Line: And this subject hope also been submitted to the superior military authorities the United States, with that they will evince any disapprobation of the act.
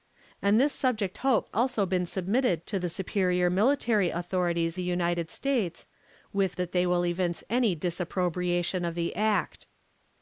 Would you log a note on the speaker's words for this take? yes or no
no